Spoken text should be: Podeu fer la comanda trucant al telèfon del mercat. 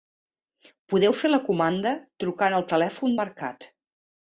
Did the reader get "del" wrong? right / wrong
wrong